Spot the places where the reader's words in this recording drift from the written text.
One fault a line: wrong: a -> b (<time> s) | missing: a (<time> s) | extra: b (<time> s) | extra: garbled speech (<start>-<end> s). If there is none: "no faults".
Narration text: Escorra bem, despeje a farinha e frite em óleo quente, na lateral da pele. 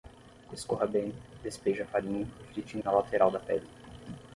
missing: óleo quente (2.8 s)